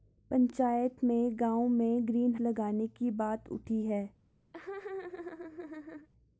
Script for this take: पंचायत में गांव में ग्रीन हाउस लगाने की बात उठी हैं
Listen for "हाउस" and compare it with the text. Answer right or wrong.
wrong